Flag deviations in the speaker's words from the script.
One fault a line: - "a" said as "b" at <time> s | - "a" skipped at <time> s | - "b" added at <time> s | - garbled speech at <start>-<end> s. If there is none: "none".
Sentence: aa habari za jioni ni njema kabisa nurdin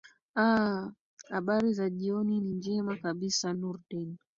none